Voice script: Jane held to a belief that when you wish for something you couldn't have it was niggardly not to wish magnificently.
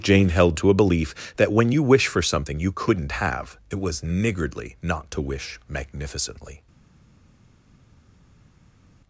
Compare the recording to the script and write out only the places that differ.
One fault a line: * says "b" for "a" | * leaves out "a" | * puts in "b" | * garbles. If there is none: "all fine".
all fine